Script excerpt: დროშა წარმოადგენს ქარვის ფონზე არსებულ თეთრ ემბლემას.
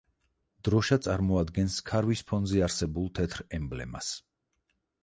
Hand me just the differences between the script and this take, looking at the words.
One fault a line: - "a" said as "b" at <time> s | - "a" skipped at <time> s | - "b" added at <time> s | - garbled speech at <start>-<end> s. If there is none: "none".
none